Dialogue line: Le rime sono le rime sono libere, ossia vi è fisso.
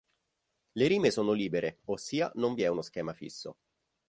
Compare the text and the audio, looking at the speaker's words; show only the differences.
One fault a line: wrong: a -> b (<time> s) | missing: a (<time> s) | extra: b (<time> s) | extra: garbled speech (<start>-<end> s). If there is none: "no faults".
missing: le rime sono (1.3 s)
extra: non (2.4 s)
extra: uno schema (2.7 s)